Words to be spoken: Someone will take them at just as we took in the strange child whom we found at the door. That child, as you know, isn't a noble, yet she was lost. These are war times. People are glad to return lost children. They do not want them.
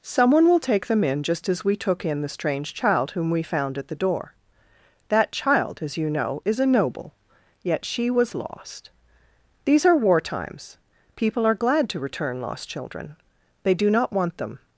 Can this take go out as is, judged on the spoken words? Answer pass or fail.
fail